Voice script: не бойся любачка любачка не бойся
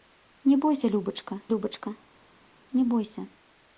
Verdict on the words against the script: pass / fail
pass